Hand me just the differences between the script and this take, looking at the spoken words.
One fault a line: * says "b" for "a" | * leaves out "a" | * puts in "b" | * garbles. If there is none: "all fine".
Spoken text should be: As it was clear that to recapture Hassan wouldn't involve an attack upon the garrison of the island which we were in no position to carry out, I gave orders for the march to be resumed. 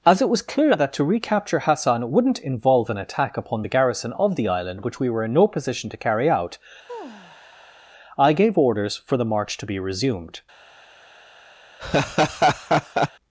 all fine